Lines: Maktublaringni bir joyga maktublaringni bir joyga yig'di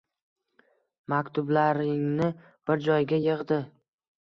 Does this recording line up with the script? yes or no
no